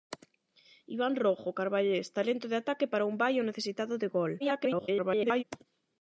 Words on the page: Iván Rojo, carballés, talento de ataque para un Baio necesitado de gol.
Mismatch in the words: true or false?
true